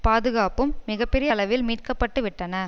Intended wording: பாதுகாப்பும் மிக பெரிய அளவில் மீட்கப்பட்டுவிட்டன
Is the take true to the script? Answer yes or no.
yes